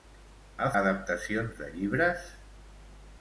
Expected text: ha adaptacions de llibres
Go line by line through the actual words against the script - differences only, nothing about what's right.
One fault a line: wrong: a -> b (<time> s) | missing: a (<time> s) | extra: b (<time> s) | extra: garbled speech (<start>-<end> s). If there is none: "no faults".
no faults